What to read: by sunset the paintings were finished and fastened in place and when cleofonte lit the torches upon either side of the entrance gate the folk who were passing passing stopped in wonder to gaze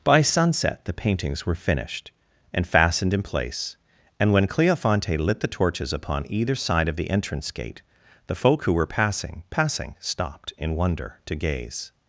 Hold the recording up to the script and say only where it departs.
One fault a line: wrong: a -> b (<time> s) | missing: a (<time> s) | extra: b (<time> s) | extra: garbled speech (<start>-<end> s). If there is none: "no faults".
no faults